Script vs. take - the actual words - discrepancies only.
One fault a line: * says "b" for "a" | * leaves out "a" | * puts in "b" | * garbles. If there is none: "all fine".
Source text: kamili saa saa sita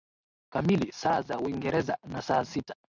* puts in "za Uingereza na"